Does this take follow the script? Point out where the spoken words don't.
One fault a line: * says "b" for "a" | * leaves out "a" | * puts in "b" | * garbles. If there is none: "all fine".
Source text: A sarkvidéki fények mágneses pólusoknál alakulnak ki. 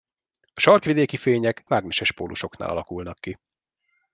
all fine